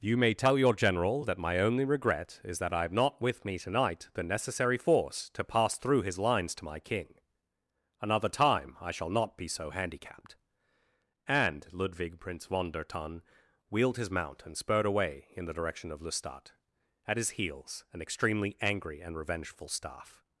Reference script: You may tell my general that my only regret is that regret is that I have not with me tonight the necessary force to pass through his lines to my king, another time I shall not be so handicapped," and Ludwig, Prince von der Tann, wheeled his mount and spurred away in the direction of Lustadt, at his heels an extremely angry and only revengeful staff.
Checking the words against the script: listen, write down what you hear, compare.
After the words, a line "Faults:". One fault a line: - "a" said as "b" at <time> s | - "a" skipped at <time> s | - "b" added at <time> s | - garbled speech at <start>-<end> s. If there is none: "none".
You may tell your general that my only regret is that I have not with me tonight the necessary force to pass through his lines to my king, another time I shall not be so handicapped," and Ludwig, Prince von der Tann, wheeled his mount and spurred away in the direction of Lustadt, at his heels an extremely angry and revengeful staff.
Faults:
- "my" said as "your" at 0.6 s
- "regret is that" skipped at 2.7 s
- "only" skipped at 19.1 s